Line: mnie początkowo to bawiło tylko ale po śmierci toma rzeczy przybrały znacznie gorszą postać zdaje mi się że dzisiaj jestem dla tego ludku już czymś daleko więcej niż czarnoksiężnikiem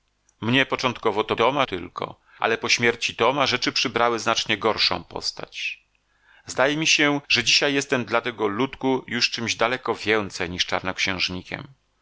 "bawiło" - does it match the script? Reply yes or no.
no